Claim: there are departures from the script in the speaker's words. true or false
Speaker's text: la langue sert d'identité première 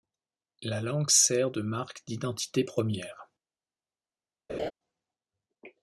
true